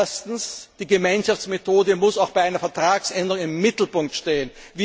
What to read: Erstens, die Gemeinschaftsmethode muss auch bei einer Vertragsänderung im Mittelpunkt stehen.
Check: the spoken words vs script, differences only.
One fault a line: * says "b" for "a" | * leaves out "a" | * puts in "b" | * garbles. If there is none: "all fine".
all fine